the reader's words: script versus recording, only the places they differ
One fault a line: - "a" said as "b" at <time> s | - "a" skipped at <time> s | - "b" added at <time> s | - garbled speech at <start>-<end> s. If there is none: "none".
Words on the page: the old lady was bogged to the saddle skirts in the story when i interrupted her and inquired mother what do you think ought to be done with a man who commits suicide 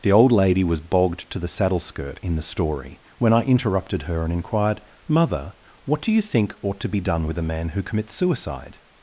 - "skirts" said as "skirt" at 1.8 s